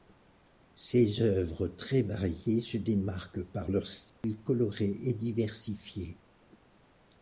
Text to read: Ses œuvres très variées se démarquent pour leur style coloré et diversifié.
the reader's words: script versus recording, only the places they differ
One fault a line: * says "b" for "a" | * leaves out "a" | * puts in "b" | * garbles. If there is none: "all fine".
* says "par" for "pour"